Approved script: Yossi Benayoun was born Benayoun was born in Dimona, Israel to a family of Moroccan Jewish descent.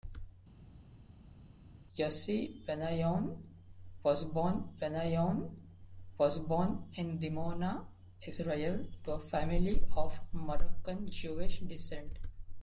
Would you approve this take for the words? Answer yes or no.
yes